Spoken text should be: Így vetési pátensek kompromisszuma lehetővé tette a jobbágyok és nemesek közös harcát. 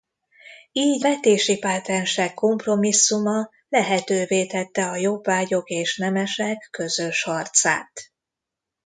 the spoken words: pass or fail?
pass